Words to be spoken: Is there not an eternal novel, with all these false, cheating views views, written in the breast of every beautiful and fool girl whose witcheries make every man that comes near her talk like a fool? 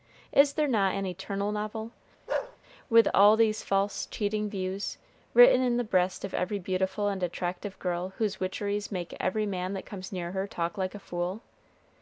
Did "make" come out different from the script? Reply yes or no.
no